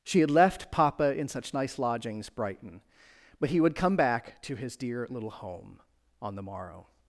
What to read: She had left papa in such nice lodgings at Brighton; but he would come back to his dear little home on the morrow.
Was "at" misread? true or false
true